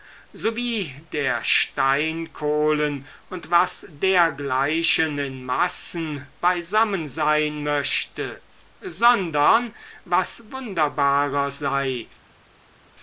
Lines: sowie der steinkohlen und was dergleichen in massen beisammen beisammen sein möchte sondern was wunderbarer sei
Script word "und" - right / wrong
right